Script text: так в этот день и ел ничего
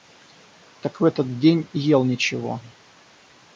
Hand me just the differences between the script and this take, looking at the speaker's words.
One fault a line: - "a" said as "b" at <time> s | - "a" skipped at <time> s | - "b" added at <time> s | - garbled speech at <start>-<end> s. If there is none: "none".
none